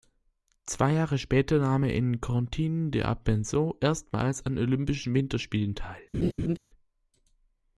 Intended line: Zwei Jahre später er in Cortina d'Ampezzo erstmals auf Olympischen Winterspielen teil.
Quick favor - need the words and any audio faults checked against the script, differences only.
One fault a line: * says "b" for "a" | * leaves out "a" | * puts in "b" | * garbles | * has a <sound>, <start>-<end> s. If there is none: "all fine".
* puts in "nahm"
* says "an" for "auf"
* has a laugh, 6.1-6.6 s